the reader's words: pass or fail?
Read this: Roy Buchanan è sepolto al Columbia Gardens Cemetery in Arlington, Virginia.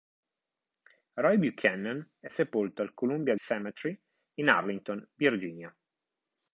fail